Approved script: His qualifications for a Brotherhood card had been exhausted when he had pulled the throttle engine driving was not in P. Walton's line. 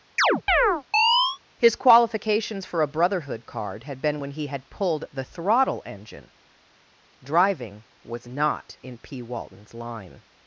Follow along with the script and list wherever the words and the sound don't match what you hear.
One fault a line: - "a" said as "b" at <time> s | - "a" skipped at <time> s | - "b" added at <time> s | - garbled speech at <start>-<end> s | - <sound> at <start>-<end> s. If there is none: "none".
- chirp at 0.2-1.4 s
- "exhausted" skipped at 4.2 s